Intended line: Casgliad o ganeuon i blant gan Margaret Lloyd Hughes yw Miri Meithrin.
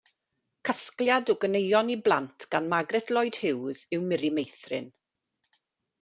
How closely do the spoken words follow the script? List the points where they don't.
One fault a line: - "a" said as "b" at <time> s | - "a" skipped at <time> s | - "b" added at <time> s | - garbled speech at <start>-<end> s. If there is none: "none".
none